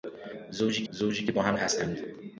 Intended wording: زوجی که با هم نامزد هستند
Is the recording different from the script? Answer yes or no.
yes